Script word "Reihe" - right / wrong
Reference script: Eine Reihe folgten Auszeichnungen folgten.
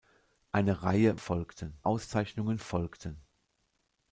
right